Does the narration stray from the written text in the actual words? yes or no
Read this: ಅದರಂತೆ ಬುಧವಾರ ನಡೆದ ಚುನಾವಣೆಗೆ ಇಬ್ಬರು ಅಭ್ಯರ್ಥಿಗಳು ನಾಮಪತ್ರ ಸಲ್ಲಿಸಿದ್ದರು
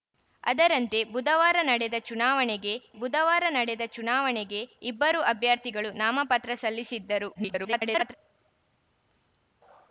yes